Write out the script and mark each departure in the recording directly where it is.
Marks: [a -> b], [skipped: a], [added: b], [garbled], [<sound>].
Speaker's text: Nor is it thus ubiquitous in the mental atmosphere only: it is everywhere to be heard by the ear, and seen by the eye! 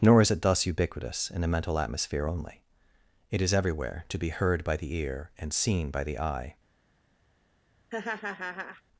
Nor is it thus ubiquitous in the mental atmosphere only: it is everywhere to be heard by the ear, and seen by the eye! [laugh]